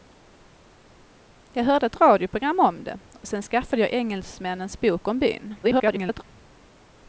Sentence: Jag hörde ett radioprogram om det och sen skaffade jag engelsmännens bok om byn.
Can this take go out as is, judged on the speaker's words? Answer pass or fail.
fail